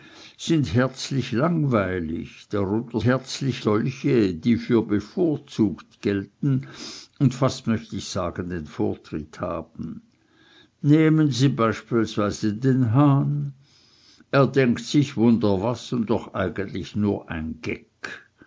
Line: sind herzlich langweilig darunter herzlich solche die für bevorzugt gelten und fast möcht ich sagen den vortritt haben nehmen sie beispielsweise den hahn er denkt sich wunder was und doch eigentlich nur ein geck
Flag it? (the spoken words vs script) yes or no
no